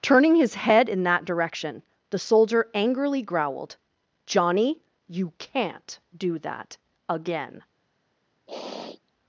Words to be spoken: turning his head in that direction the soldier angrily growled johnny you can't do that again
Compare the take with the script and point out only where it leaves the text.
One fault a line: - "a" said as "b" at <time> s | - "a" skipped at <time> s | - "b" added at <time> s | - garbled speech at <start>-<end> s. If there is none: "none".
none